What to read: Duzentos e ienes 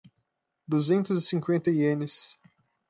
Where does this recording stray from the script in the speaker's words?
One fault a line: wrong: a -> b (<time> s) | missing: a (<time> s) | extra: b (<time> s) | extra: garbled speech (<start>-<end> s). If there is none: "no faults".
extra: cinquenta (1.3 s)